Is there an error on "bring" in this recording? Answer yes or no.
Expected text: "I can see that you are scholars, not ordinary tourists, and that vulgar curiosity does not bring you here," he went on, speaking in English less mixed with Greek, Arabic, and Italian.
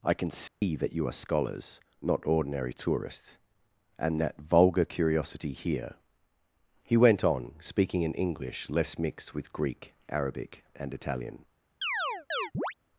yes